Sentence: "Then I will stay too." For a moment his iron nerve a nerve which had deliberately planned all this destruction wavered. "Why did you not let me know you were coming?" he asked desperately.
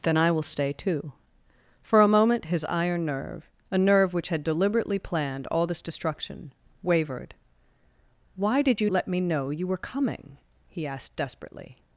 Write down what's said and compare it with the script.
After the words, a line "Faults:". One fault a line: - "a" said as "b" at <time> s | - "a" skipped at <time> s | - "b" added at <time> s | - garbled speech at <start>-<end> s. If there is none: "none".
"Then I will stay too." For a moment his iron nerve a nerve which had deliberately planned all this destruction wavered. "Why did you let me know you were coming?" he asked desperately.
Faults:
- "not" skipped at 8.9 s